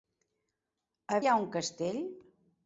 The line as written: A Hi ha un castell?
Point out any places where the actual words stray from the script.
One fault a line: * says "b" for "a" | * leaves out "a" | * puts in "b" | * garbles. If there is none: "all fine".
all fine